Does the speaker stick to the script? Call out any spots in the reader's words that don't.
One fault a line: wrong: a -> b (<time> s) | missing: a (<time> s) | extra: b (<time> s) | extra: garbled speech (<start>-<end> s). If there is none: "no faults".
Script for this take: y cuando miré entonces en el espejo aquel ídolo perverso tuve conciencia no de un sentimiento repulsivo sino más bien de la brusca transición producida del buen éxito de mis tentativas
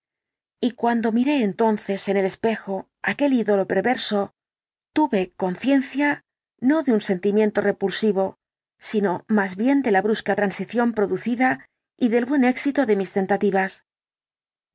extra: y (12.0 s)